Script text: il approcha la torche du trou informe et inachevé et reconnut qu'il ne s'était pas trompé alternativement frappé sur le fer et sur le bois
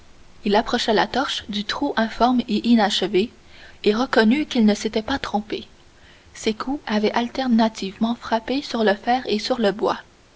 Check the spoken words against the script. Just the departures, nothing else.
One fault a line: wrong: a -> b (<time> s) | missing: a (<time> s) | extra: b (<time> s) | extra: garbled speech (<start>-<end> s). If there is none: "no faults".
extra: ses coups avaient (6.3 s)